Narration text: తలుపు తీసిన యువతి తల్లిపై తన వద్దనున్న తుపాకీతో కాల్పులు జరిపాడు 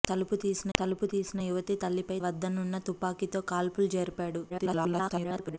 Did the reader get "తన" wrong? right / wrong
wrong